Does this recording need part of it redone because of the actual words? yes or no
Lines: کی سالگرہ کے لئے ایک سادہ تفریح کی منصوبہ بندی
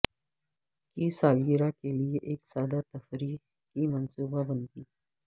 no